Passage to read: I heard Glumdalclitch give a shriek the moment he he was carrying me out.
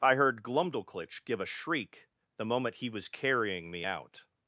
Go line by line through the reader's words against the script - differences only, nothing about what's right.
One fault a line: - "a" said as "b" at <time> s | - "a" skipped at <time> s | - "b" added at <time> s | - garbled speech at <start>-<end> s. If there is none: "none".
- "he" skipped at 2.9 s